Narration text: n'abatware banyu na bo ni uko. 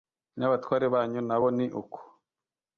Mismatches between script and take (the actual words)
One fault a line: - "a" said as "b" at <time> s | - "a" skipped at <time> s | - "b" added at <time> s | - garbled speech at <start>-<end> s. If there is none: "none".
none